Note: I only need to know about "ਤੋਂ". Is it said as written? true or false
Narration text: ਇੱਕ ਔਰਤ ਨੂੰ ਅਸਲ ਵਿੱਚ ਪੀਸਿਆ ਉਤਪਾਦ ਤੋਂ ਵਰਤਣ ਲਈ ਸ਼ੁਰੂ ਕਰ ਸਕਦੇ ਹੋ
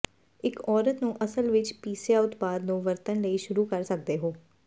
false